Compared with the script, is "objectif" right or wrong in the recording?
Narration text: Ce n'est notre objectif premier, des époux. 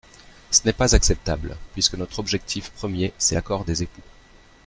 right